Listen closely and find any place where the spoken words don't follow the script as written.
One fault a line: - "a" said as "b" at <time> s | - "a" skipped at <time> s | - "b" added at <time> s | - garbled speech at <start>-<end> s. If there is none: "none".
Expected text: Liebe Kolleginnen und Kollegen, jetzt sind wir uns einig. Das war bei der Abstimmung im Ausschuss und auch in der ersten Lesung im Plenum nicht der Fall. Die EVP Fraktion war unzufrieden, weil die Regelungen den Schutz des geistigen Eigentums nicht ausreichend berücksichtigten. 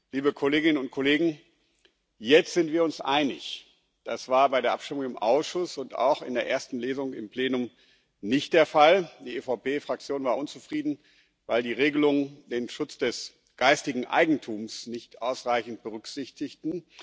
none